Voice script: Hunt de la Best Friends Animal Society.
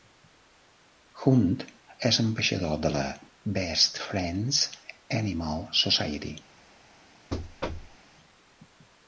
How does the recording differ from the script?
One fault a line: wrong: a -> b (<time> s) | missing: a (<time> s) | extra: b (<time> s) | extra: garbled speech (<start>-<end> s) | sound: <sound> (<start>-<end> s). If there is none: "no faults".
extra: és ambaixador (2.1 s)
sound: thud (7.3-8.0 s)